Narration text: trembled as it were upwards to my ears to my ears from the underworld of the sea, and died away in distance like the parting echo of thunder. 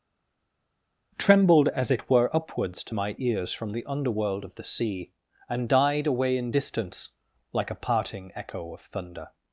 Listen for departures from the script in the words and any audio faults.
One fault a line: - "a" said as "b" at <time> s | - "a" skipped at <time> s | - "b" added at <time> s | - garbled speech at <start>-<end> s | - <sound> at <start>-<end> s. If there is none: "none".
- "to my ears" skipped at 3.5 s
- "the" said as "a" at 7.7 s